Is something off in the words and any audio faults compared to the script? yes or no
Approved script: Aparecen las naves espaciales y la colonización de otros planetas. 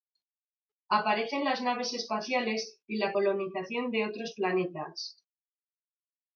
no